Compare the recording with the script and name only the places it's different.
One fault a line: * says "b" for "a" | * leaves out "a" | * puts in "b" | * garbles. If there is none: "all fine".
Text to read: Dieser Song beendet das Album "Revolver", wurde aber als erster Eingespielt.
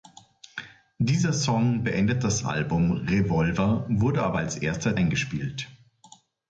all fine